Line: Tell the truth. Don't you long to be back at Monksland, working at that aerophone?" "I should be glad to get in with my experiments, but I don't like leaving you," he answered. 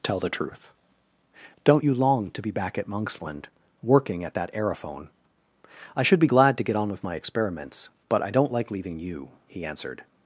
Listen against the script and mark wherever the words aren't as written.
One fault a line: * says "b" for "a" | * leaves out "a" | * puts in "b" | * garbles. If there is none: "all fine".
* says "on" for "in"